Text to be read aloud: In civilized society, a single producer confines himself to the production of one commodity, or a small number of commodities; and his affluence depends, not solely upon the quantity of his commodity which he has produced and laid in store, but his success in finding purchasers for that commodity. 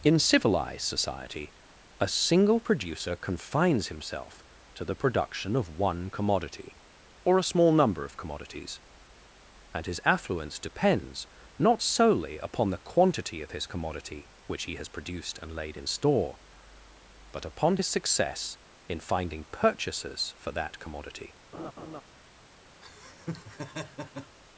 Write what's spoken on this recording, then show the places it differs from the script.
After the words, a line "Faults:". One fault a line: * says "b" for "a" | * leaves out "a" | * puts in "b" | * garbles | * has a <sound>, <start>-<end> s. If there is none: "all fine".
In civilized society, a single producer confines himself to the production of one commodity, or a small number of commodities; and his affluence depends, not solely upon the quantity of his commodity which he has produced and laid in store, but upon his success in finding purchasers for that commodity.
Faults:
* puts in "upon"
* has a laugh, 21.5-22.0 s
* has a laugh, 22.8-24.4 s